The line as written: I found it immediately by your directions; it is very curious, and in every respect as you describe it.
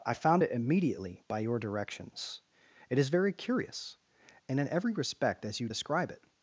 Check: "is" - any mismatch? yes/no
no